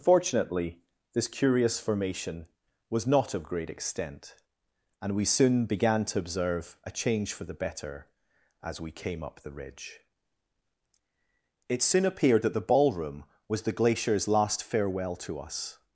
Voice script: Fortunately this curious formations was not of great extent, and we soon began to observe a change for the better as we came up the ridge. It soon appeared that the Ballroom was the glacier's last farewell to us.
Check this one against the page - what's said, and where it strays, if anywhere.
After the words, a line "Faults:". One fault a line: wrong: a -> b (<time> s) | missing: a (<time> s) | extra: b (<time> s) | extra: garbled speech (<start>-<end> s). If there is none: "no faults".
Fortunately this curious formation was not of great extent, and we soon began to observe a change for the better as we came up the ridge. It soon appeared that the Ballroom was the glacier's last farewell to us.
Faults:
wrong: formations -> formation (1.8 s)